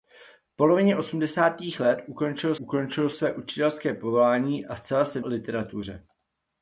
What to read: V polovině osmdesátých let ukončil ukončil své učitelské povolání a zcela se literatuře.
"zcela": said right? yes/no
yes